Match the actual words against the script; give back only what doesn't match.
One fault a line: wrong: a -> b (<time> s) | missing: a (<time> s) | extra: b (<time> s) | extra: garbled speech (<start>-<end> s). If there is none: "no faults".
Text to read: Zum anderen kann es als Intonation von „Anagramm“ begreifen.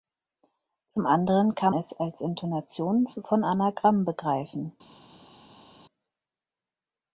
no faults